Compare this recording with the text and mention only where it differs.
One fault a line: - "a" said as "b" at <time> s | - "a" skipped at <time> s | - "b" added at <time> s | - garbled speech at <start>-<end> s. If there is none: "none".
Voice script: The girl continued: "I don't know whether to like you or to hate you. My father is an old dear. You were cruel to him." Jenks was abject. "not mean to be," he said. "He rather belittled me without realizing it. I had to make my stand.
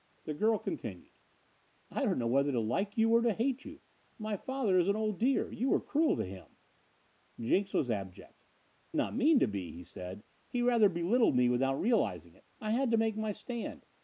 none